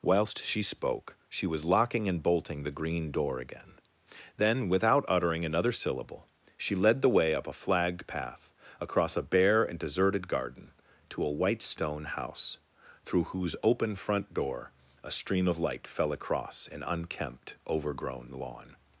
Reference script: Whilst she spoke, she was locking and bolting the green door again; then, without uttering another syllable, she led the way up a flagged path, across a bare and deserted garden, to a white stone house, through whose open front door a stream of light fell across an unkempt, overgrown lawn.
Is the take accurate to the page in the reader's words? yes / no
yes